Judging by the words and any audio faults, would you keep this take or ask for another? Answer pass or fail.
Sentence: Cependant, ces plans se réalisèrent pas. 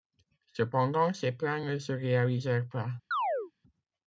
fail